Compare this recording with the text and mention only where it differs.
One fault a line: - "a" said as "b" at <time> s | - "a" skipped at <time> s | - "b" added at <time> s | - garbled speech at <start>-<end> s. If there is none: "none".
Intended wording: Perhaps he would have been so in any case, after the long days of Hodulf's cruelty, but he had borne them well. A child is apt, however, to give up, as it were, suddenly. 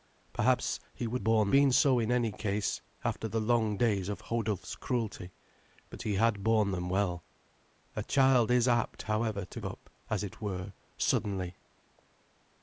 - "have" said as "borne" at 1.2 s
- "give" skipped at 9.6 s